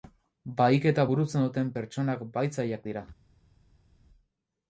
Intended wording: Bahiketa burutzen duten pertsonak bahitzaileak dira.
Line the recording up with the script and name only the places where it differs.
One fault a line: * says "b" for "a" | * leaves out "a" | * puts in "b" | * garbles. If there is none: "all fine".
all fine